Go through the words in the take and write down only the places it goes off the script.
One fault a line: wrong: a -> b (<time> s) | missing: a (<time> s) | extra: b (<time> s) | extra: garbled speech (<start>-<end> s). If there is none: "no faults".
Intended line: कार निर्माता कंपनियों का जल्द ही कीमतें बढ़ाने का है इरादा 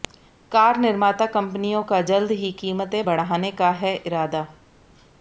no faults